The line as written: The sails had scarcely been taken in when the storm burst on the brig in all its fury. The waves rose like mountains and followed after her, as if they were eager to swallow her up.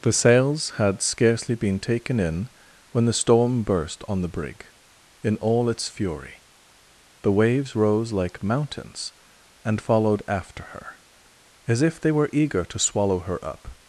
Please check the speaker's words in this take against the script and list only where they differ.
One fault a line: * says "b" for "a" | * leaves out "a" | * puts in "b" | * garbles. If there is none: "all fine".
all fine